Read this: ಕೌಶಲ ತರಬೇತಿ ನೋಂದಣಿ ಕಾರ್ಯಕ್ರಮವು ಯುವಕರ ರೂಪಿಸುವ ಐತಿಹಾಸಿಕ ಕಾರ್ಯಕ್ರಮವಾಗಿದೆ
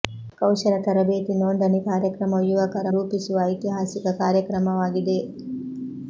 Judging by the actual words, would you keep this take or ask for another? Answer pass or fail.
pass